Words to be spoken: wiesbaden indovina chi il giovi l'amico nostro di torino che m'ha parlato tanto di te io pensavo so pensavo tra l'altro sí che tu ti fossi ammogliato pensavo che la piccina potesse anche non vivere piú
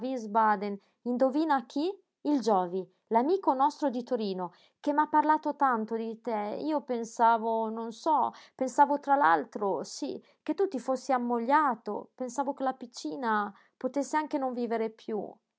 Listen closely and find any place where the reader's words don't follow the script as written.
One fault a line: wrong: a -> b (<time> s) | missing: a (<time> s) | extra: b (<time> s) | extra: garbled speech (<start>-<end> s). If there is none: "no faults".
extra: non (7.7 s)